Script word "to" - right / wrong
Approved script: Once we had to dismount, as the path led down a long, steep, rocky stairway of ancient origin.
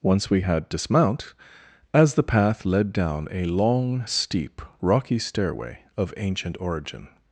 wrong